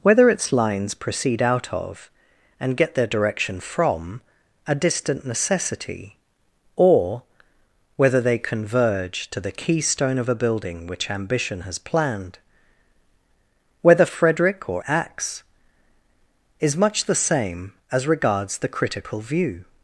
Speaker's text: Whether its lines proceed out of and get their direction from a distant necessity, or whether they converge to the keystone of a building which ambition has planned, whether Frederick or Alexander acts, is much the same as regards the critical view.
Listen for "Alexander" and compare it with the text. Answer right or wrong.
wrong